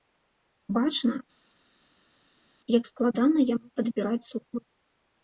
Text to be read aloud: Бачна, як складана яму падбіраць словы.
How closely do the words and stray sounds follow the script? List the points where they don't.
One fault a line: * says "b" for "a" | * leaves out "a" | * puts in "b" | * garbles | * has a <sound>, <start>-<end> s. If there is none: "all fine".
all fine